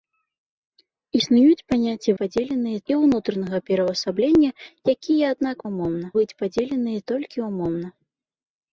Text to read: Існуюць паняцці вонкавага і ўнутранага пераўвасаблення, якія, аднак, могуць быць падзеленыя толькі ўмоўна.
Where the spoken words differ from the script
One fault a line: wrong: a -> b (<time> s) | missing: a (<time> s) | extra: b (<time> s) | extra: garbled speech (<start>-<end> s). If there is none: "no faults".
wrong: вонкавага -> падзеленыя (2.2 s)
wrong: могуць -> ўмоўна (5.7 s)